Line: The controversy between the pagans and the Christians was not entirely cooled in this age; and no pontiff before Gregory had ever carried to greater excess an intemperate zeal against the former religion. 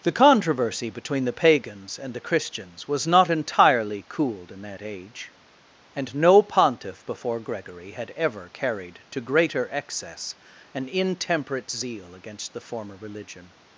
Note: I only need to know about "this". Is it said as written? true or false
false